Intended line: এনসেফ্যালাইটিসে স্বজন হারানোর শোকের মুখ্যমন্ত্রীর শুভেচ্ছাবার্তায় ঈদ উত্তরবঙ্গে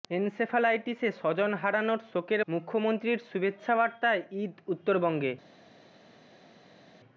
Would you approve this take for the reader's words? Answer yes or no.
yes